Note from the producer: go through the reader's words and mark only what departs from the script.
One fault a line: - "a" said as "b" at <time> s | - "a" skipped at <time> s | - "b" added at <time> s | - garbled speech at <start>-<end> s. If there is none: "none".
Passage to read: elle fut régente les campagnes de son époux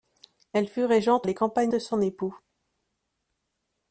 none